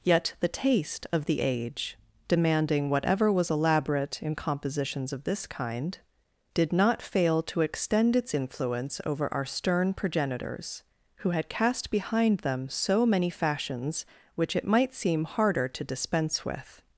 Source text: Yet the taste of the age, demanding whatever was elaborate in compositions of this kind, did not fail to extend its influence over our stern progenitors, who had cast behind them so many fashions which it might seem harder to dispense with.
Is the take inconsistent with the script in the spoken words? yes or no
no